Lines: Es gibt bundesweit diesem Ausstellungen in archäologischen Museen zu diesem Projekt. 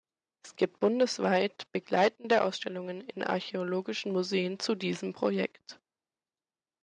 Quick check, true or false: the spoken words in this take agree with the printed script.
false